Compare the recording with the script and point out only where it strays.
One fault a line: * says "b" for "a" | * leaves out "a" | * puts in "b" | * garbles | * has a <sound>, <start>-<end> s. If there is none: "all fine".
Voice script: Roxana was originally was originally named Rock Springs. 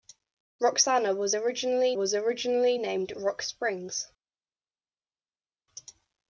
all fine